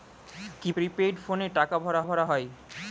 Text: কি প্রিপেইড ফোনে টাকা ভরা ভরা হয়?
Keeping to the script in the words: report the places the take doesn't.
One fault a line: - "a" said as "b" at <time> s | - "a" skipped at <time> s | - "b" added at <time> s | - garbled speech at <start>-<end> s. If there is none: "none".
none